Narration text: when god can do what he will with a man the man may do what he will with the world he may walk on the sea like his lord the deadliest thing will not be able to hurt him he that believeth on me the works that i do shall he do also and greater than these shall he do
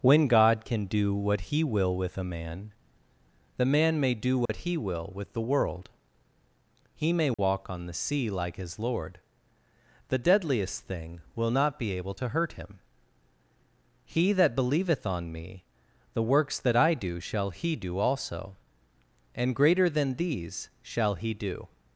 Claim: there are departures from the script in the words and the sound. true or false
true